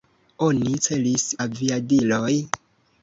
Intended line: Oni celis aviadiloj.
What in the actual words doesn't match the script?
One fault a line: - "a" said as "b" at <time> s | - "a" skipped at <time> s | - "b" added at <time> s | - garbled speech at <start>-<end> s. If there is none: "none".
none